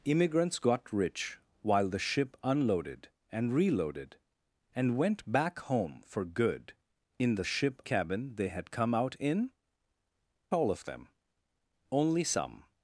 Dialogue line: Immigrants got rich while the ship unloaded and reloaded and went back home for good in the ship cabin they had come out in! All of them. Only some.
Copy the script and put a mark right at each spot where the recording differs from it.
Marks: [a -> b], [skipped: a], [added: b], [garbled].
Immigrants got rich while the ship unloaded and reloaded and went back home for good in the ship cabin they had come out in! All of them. Only some.